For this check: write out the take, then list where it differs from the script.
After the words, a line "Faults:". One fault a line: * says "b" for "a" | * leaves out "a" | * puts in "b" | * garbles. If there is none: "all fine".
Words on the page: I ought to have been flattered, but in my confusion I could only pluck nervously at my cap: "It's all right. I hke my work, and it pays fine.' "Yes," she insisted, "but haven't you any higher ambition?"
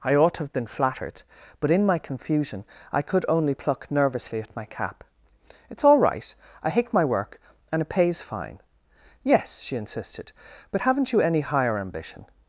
I ought to have been flattered, but in my confusion I could only pluck nervously at my cap: "It's all right. I hate my work, and it pays fine.' "Yes," she insisted, "but haven't you any higher ambition?"
Faults:
* says "hate" for "hke"